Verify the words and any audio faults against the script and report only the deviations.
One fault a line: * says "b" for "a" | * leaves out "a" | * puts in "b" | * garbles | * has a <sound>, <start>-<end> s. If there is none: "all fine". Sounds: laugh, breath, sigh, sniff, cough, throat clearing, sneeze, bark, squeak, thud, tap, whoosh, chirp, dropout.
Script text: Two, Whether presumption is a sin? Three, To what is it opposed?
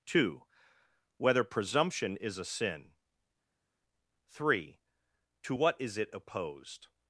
all fine